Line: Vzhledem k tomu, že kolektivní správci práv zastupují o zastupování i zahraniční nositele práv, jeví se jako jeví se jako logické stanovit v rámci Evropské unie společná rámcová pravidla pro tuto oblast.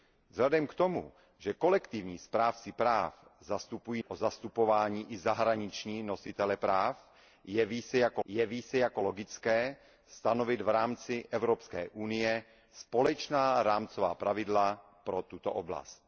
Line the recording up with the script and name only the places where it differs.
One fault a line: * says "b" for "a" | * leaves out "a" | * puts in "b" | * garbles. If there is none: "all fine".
all fine